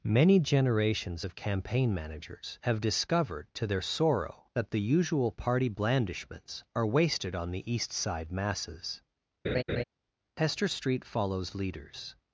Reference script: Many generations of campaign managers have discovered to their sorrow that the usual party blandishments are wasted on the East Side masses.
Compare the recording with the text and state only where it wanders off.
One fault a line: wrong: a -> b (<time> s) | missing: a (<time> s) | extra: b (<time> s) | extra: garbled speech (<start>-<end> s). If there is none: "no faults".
extra: Hester Street follows leaders (10.4 s)